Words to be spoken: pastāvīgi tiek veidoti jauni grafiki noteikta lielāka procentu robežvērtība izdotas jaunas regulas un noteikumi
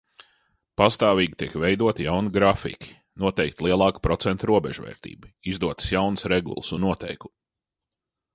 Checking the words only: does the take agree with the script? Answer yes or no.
yes